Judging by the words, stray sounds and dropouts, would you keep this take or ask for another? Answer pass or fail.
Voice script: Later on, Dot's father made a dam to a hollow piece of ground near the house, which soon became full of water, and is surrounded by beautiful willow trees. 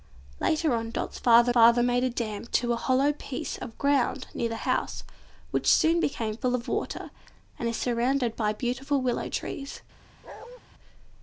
fail